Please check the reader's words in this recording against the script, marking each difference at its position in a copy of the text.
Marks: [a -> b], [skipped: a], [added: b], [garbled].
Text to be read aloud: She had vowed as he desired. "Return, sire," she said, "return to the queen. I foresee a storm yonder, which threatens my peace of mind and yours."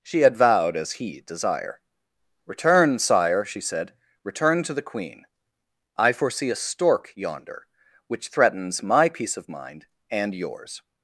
She had vowed as he [desired. -> desire] "Return, sire," she said, "return to the queen. I foresee a [storm -> stork] yonder, which threatens my peace of mind and yours."